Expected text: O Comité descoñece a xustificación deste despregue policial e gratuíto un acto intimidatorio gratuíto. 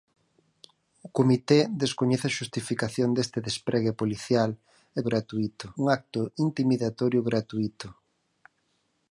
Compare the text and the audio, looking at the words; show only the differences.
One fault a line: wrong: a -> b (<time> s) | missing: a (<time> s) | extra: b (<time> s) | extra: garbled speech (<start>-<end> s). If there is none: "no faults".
no faults